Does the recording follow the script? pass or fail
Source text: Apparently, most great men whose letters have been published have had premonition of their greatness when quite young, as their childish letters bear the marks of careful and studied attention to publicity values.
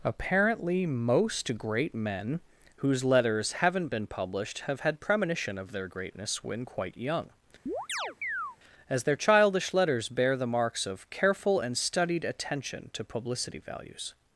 fail